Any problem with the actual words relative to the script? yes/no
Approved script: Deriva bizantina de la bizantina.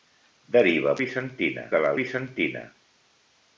no